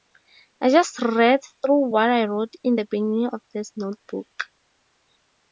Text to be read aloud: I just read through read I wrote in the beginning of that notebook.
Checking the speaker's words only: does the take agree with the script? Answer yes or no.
no